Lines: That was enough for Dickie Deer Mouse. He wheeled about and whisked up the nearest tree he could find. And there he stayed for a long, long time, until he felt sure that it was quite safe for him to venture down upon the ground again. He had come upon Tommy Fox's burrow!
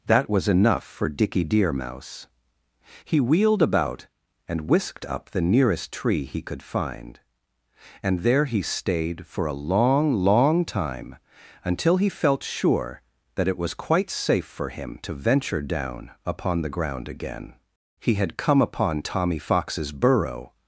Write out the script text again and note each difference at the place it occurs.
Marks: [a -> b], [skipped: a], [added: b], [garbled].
That was enough for Dickie Deer Mouse. He wheeled about and whisked up the nearest tree he could find. And there he stayed for a long, long time, until he felt sure that it was quite safe for him to venture down upon the ground again. He had come upon Tommy Fox's burrow!